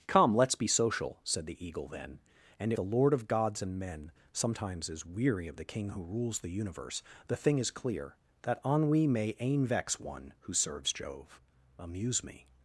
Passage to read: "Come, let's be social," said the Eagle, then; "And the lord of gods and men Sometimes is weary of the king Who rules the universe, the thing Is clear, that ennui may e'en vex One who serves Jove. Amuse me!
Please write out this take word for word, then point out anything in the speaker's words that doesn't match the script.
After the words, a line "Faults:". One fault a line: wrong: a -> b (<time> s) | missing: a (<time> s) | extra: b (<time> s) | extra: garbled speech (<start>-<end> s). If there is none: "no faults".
"Come, let's be social," said the Eagle, then; "And the lord of gods and men Sometimes is weary of the king Who rules the universe, the thing Is clear, that ennui may e'en vex One who serves Jove. Amuse me!
Faults:
no faults